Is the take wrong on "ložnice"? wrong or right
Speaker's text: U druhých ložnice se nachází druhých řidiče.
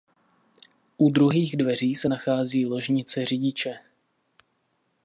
wrong